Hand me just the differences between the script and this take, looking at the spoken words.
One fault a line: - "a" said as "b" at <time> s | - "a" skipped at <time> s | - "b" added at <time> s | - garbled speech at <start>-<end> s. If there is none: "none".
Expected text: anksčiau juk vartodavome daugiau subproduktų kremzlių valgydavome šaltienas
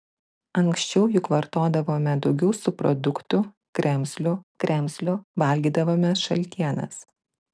- "kremzlių" added at 4.7 s